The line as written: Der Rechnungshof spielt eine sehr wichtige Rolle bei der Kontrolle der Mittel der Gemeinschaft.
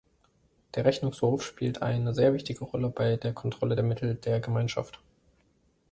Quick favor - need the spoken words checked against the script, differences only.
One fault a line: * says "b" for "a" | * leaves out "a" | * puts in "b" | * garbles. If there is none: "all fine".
all fine